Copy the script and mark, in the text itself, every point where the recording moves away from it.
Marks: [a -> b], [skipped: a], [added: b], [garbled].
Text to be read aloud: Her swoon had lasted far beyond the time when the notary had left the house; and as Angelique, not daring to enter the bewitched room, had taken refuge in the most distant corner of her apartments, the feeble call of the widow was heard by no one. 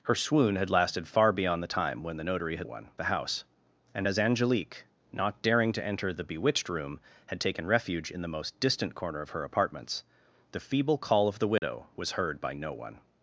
Her swoon had lasted far beyond the time when the notary had [left -> one] the house; and as Angelique, not daring to enter the bewitched room, had taken refuge in the most distant corner of her apartments, the feeble call of the widow was heard by no one.